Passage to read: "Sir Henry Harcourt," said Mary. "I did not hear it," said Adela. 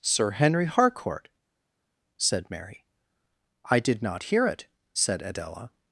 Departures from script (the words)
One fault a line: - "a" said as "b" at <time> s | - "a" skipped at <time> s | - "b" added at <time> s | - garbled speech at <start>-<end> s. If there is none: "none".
none